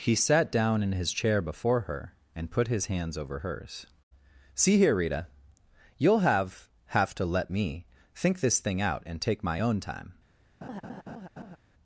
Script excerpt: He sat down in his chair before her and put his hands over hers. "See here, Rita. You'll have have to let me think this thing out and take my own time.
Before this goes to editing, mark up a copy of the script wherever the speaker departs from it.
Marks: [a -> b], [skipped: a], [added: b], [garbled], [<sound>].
He sat down in his chair before her and put his hands over hers. "See here, Rita. You'll have have to let me think this thing out and take my own time. [laugh]